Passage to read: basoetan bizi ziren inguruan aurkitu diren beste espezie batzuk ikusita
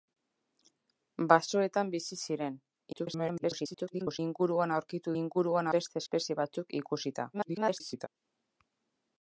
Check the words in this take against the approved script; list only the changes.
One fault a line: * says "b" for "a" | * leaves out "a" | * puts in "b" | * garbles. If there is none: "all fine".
* garbles
* says "inguruan" for "diren"
* garbles